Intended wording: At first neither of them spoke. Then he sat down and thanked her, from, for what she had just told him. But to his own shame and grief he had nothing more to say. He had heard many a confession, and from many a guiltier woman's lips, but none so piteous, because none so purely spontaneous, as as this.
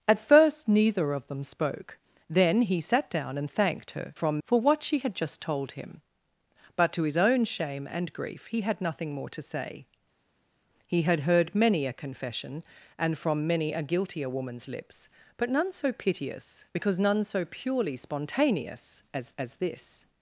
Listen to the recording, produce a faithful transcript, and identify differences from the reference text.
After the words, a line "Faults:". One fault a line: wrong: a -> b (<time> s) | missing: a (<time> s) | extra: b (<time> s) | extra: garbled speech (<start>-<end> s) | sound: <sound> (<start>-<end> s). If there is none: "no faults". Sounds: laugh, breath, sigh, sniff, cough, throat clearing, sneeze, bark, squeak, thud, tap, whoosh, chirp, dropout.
At first neither of them spoke. Then he sat down and thanked her, from, for what she had just told him. But to his own shame and grief he had nothing more to say. He had heard many a confession, and from many a guiltier woman's lips, but none so piteous, because none so purely spontaneous, as as this.
Faults:
no faults